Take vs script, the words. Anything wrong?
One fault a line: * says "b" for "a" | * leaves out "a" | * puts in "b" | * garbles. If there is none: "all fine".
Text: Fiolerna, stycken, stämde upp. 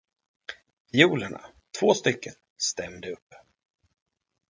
* puts in "två"